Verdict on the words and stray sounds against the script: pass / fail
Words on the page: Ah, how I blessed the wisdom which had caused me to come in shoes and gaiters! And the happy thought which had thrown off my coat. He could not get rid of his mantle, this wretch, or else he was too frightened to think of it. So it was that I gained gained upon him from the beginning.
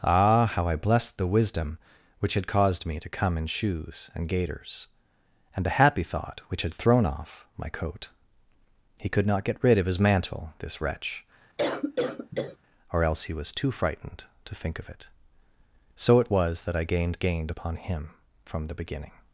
fail